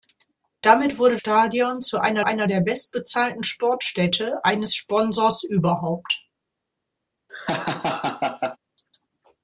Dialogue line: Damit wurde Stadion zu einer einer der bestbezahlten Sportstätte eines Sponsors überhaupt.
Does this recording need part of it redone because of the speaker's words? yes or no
no